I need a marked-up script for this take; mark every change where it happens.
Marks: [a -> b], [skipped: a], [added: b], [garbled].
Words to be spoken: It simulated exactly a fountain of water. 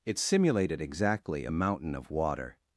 It simulated exactly a [fountain -> mountain] of water.